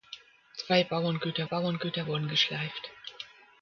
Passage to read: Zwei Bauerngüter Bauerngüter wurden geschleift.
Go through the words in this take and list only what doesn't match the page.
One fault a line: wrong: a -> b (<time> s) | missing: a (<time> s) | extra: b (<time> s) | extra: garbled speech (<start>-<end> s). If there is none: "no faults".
no faults